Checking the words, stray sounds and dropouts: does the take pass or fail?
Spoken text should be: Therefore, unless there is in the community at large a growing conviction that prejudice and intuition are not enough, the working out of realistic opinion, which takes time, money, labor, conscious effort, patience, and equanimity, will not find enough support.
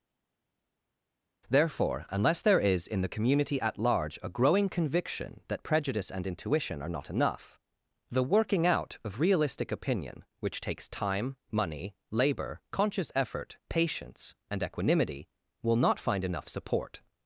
pass